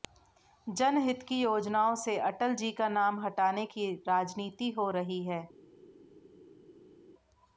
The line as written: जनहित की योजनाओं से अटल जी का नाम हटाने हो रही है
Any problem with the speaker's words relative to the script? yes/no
yes